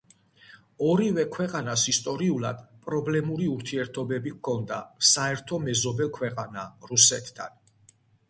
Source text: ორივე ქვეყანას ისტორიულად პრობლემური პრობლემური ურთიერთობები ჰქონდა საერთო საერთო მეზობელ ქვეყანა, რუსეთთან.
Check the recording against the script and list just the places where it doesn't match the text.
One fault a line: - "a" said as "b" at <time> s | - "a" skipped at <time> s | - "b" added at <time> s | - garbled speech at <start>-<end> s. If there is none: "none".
- "პრობლემური" skipped at 3.5 s
- "საერთო" skipped at 5.6 s